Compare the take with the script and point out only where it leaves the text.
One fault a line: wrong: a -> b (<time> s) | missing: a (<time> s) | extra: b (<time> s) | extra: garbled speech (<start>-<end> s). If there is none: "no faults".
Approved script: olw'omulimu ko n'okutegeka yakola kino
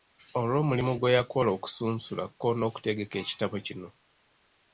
extra: gwe yakola okusunsula (1.0 s)
wrong: yakola -> ekitabo (3.2 s)